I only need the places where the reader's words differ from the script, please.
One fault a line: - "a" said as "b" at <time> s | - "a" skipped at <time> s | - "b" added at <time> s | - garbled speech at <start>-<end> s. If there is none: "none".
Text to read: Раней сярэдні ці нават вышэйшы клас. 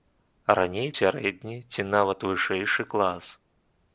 none